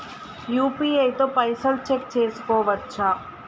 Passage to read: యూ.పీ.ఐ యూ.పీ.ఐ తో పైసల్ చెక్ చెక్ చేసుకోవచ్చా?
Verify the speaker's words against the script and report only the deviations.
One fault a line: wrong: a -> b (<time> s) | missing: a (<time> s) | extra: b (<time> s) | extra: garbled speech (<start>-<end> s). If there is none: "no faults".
missing: యూ.పీ.ఐ (1.1 s)
missing: చెక్ (2.1 s)